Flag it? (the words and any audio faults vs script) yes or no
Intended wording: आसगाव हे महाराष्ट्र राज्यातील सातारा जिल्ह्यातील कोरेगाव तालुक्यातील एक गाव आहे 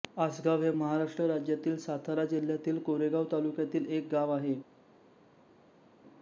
no